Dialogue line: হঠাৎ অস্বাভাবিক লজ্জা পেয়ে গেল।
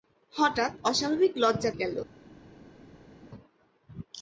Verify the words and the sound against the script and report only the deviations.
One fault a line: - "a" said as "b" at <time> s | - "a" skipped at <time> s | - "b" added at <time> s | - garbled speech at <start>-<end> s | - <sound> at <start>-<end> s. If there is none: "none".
- "পেয়ে" skipped at 1.7 s